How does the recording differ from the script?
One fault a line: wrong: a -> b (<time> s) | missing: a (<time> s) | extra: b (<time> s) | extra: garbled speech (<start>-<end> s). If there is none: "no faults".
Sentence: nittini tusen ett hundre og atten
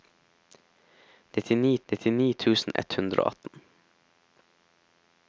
extra: nittini (1.9 s)